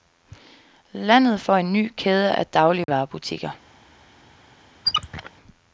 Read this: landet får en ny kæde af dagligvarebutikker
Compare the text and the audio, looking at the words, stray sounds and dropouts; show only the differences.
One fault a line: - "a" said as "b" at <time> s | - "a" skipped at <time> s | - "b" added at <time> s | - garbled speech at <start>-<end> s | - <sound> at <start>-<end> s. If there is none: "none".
- dropout at 2.8-2.9 s
- squeak at 4.9-5.3 s